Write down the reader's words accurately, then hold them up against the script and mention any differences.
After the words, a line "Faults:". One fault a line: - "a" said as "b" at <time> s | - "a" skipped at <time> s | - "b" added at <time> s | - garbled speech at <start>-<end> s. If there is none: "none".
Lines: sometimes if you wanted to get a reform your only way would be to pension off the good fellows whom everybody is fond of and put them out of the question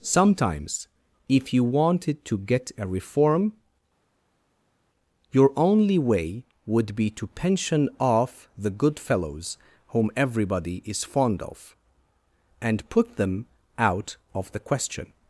sometimes if you wanted to get a reform your only way would be to pension off the good fellows whom everybody is fond of and put them out of the question
Faults:
none